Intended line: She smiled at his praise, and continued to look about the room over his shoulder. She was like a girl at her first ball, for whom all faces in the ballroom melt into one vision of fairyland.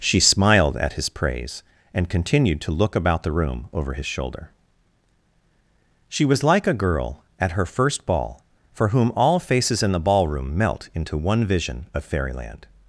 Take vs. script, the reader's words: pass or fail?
pass